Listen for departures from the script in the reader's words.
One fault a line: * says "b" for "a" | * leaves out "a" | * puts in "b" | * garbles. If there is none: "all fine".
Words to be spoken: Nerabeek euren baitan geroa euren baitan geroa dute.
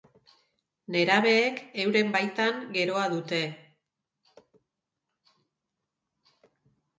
* leaves out "euren baitan geroa"